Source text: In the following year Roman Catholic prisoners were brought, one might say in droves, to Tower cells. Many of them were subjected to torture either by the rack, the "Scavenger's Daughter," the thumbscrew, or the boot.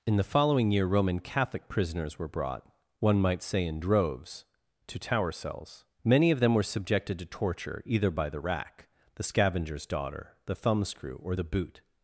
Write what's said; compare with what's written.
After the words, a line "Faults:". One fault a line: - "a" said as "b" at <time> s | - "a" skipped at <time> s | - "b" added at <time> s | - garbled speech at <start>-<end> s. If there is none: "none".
In the following year Roman Catholic prisoners were brought, one might say in droves, to Tower cells. Many of them were subjected to torture either by the rack, the "Scavenger's Daughter," the thumbscrew, or the boot.
Faults:
none